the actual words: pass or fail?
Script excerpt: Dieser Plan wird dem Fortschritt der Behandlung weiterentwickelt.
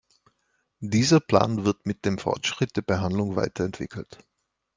fail